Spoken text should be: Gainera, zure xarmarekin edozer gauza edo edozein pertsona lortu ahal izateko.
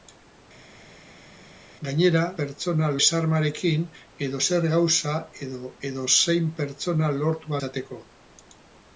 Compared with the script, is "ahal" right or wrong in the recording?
wrong